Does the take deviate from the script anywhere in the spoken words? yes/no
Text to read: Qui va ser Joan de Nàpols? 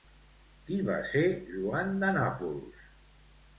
no